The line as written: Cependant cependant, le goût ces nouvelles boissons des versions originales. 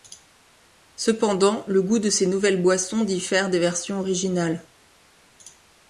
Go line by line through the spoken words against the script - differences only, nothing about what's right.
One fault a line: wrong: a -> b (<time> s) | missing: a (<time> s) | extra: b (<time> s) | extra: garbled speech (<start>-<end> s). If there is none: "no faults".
missing: cependant (1.7 s)
extra: de (2.0 s)
extra: diffère (3.0 s)